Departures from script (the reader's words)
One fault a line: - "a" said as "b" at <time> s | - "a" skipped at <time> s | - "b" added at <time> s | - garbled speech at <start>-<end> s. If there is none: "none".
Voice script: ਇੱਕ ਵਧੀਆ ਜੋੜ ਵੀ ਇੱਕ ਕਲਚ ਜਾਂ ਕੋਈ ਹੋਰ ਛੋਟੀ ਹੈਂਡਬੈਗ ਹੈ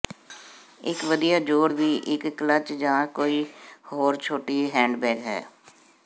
none